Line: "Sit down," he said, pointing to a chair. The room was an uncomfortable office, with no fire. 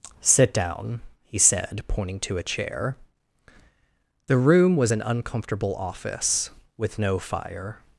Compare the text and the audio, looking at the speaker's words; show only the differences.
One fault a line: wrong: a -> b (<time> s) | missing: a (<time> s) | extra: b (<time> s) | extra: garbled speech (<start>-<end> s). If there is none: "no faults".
no faults